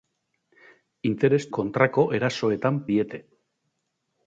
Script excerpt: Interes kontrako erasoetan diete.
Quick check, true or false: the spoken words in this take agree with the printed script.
true